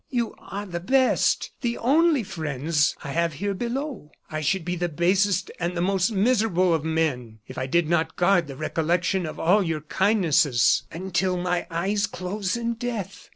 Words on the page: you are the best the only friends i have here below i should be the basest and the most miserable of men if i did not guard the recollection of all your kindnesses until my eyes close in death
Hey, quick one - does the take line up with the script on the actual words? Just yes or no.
yes